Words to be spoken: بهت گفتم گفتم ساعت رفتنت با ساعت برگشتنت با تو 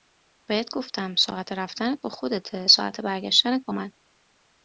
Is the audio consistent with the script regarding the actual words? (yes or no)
no